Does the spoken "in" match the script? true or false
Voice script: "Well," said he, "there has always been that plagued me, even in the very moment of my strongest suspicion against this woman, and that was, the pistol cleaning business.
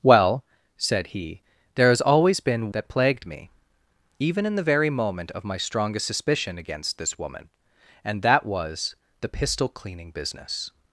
true